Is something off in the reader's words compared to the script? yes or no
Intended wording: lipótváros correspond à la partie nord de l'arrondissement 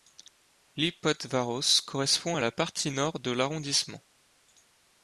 no